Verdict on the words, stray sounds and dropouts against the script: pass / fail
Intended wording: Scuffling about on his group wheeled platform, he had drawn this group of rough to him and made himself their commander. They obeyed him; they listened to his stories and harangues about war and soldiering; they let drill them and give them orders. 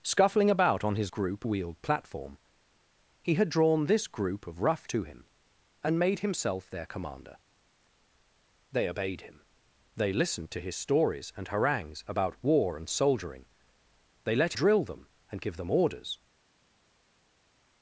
pass